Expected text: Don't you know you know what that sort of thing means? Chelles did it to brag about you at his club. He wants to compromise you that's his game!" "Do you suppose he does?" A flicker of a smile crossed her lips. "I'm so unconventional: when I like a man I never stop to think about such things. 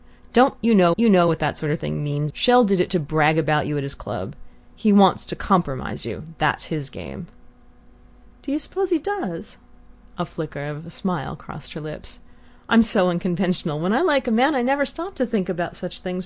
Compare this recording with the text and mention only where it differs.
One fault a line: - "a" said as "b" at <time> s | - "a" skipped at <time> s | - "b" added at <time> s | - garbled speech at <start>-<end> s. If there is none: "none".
none